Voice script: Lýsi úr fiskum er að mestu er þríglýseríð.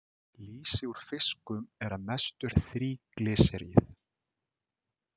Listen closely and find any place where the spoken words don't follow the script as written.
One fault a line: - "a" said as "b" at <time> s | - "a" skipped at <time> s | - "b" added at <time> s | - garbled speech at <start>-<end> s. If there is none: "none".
none